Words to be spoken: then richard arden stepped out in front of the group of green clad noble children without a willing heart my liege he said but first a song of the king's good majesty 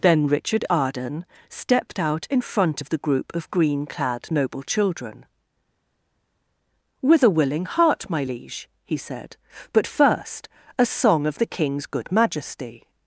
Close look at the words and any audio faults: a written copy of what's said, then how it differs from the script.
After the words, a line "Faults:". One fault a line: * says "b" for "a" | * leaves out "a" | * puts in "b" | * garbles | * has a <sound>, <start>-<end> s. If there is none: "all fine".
then richard arden stepped out in front of the group of green clad noble children with a willing heart my liege he said but first a song of the king's good majesty
Faults:
* says "with" for "without"